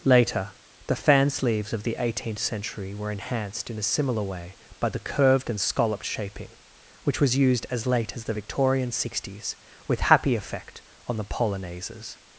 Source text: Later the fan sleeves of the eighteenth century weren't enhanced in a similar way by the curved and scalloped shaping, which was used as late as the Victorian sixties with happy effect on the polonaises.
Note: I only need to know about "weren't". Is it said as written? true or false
false